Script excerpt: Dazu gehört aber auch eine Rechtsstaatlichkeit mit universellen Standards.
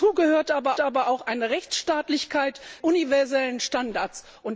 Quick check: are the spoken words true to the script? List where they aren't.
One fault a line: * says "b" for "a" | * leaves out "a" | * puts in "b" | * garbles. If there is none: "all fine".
* puts in "aber"
* leaves out "mit"